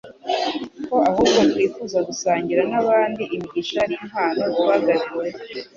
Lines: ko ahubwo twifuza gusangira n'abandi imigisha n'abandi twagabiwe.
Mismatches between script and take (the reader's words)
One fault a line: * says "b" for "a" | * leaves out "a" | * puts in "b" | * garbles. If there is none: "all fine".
* says "n'impano" for "n'abandi"